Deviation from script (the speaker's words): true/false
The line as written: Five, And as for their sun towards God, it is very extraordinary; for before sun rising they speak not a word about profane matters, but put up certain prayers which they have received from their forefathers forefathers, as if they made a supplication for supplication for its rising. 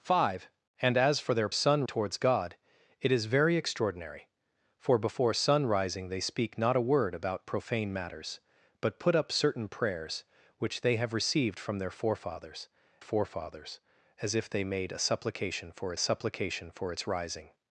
false